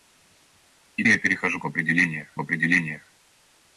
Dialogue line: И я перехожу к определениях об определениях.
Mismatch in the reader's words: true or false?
false